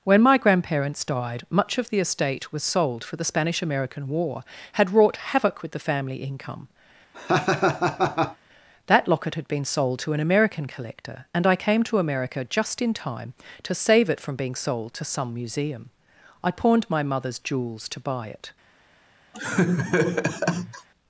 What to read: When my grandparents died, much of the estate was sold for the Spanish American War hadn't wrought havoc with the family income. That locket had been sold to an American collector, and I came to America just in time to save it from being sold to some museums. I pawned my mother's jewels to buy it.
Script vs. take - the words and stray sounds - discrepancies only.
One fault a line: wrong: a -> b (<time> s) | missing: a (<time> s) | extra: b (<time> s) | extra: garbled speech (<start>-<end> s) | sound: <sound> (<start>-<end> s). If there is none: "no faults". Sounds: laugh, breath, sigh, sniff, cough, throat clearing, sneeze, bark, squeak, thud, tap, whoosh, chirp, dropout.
wrong: hadn't -> had (4.7 s)
sound: laugh (7.1-8.4 s)
wrong: museums -> museum (15.3 s)
sound: laugh (19.3-20.9 s)